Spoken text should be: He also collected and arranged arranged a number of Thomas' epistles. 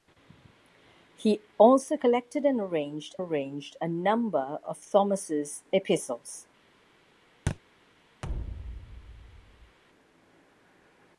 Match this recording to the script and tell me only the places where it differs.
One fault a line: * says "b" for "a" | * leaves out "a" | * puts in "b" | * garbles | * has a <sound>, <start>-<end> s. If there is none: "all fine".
* has a thud, 7.5-7.6 s
* has a thud, 8.2-9.8 s